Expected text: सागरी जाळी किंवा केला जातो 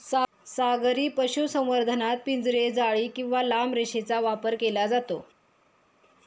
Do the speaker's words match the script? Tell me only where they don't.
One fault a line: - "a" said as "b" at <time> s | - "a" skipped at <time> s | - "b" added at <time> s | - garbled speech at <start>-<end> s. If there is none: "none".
- "पशुसंवर्धनात पिंजरे" added at 1.1 s
- "लांब रेषेचा वापर" added at 3.4 s